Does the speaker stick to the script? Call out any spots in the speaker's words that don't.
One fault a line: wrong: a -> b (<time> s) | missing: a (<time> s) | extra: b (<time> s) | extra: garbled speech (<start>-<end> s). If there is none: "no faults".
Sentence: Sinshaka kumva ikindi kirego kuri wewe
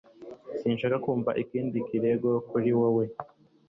no faults